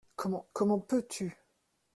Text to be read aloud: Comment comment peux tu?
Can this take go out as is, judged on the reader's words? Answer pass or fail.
pass